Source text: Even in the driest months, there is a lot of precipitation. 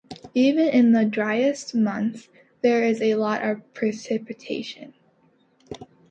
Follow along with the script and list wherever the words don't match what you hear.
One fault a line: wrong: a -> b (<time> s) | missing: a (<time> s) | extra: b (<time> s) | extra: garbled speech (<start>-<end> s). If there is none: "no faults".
no faults